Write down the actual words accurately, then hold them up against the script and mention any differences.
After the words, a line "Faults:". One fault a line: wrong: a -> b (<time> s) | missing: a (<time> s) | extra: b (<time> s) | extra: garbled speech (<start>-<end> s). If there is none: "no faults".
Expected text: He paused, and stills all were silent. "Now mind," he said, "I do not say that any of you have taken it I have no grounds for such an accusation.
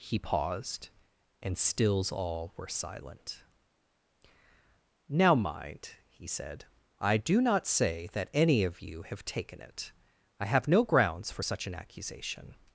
He paused, and stills all were silent. "Now mind," he said, "I do not say that any of you have taken it I have no grounds for such an accusation.
Faults:
no faults